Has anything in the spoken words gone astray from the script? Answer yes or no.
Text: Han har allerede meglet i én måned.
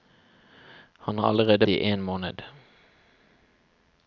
yes